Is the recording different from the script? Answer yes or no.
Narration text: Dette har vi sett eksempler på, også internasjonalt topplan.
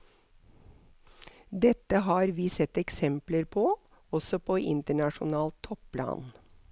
yes